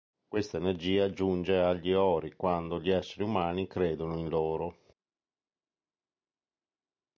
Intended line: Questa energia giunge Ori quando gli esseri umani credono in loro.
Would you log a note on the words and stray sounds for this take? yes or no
yes